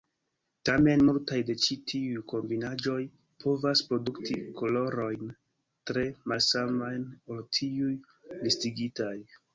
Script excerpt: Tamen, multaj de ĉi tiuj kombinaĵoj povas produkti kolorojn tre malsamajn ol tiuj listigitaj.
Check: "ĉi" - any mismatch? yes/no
no